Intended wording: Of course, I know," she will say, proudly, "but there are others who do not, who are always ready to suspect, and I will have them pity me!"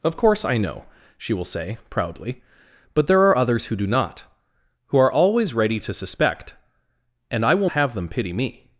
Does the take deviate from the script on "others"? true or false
false